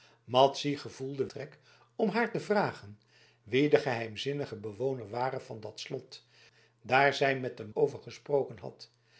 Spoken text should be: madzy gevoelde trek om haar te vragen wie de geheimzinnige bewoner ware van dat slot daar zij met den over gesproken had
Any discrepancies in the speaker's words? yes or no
no